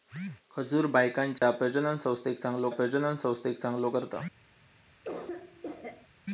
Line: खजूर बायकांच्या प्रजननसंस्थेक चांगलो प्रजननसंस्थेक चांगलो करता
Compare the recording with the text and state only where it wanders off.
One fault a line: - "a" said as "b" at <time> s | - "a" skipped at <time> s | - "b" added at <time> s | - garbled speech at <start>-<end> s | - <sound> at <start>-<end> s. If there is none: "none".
- dropout at 1.4-1.4 s
- cough at 5.0-6.1 s